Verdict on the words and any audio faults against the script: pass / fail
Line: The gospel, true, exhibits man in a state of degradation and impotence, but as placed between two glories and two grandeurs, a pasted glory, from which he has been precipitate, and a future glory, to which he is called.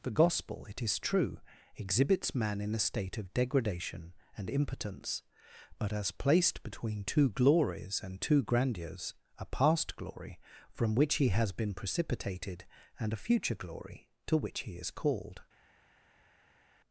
fail